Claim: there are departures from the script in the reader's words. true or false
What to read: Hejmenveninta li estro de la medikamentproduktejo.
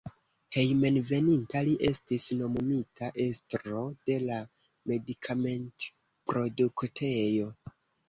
true